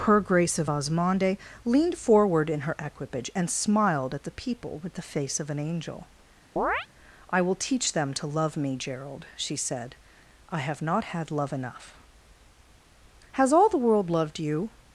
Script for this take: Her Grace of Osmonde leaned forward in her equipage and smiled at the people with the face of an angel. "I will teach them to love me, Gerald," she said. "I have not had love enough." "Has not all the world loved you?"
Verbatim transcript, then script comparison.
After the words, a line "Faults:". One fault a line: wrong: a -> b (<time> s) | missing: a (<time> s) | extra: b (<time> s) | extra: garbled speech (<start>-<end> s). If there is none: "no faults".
Her Grace of Osmonde leaned forward in her equipage and smiled at the people with the face of an angel. "I will teach them to love me, Gerald," she said. "I have not had love enough." "Has all the world loved you?"
Faults:
missing: not (13.5 s)